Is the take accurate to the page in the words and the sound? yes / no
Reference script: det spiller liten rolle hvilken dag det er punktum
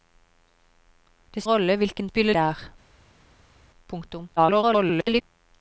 no